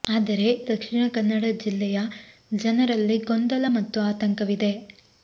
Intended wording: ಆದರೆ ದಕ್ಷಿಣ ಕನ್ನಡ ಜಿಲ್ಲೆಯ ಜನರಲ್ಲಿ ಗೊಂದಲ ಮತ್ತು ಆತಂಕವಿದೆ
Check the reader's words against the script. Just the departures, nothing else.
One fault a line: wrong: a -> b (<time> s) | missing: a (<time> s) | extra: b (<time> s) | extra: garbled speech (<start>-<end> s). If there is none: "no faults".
no faults